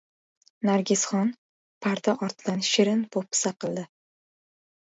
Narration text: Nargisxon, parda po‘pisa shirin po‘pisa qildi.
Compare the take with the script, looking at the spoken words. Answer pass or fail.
fail